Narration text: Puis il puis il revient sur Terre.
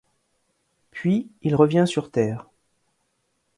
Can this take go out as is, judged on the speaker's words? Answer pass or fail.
fail